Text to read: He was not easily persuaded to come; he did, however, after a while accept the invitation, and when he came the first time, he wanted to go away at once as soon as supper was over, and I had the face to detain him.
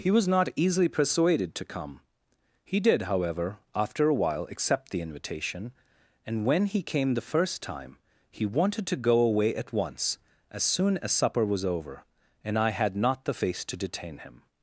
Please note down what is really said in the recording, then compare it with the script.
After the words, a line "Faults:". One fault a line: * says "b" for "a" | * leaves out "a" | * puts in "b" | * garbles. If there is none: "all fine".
He was not easily persuaded to come; he did, however, after a while accept the invitation, and when he came the first time, he wanted to go away at once as soon as supper was over, and I had not the face to detain him.
Faults:
* puts in "not"